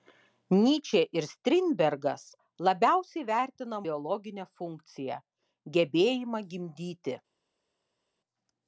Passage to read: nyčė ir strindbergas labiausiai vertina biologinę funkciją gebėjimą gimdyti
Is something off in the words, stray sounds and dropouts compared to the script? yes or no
no